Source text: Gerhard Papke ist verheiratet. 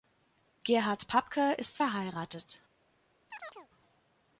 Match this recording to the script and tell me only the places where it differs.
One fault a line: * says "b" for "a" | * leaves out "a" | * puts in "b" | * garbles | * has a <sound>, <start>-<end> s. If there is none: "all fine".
* has a chirp, 3.3-3.7 s